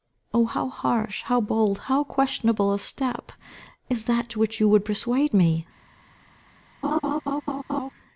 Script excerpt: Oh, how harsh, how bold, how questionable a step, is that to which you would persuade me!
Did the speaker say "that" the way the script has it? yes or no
yes